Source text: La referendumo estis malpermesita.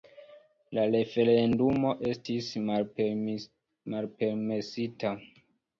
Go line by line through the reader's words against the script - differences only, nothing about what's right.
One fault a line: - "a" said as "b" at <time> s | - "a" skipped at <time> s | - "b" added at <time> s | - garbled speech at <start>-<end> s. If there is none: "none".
none